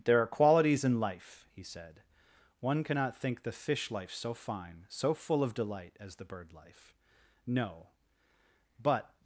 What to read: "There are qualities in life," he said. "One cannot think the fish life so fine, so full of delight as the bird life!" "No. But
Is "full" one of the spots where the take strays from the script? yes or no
no